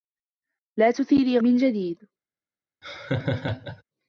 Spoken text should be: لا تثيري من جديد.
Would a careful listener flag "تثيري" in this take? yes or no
no